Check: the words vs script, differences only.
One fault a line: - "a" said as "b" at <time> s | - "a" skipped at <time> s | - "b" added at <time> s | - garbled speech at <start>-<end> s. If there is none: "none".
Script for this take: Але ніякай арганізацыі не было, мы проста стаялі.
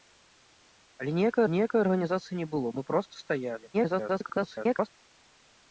- "ніякай" added at 1.5 s
- garbled speech at 3.7-4.9 s